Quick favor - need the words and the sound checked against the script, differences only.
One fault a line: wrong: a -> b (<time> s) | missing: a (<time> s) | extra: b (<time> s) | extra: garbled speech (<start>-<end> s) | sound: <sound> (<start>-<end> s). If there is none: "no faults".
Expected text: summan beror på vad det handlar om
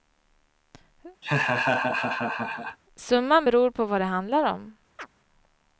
sound: laugh (1.2-2.8 s)
sound: chirp (5.0-5.1 s)